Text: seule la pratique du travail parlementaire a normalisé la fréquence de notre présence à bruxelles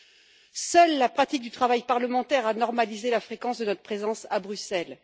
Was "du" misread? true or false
false